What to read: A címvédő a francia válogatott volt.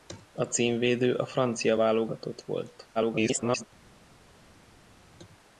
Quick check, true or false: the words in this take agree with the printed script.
false